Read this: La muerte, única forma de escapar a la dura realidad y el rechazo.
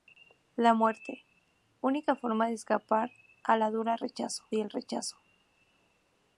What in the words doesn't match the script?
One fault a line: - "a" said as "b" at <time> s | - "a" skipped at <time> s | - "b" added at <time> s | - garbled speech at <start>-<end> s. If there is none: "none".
- "realidad" said as "rechazo" at 4.0 s